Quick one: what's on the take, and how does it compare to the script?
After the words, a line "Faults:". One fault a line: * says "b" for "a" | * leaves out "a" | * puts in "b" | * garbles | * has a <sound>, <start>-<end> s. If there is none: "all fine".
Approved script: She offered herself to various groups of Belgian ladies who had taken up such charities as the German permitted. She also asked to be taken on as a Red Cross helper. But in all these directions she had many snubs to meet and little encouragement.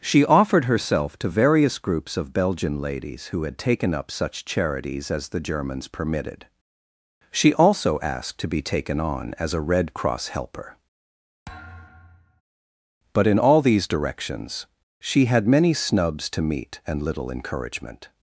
She offered herself to various groups of Belgian ladies who had taken up such charities as the Germans permitted. She also asked to be taken on as a Red Cross helper. But in all these directions she had many snubs to meet and little encouragement.
Faults:
* says "Germans" for "German"
* has a thud, 11.5-12.4 s